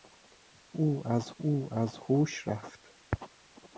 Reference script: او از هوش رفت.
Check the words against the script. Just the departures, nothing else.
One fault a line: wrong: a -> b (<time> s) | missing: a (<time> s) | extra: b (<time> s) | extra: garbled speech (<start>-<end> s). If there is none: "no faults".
extra: او از (1.4 s)